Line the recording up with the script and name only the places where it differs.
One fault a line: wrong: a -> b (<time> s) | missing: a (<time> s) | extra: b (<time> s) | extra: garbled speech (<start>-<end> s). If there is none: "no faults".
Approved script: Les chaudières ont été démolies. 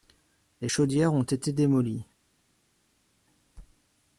no faults